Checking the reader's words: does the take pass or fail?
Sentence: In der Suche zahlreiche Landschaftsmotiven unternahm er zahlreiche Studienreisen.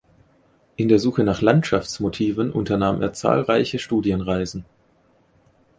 fail